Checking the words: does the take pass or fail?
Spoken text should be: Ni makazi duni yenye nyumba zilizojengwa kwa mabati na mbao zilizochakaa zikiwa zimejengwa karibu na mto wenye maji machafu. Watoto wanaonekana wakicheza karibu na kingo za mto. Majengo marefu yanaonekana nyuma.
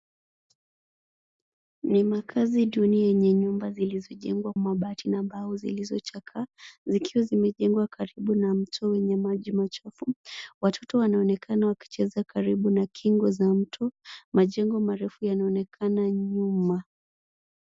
fail